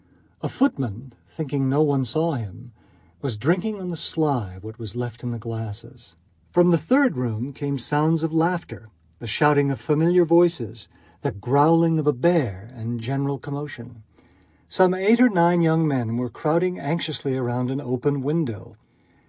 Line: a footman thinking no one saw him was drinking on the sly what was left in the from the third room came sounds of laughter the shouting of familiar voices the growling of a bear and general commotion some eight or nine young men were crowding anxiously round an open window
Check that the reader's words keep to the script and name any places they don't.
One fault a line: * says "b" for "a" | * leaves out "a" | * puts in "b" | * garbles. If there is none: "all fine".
* puts in "glasses"